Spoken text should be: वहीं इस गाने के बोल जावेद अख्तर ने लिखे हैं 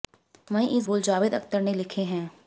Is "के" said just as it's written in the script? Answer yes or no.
no